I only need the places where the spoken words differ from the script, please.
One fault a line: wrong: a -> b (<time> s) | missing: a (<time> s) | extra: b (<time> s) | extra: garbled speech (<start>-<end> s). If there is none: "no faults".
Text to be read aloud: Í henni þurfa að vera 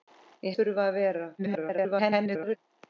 missing: henni (0.5 s)
extra: garbled speech (1.4-2.6 s)